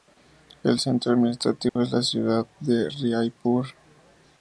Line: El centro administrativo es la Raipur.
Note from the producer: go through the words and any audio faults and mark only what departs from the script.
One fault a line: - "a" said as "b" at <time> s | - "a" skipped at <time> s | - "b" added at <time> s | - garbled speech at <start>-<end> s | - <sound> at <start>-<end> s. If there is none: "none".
- dropout at 1.7-1.8 s
- "ciudad de" added at 2.0 s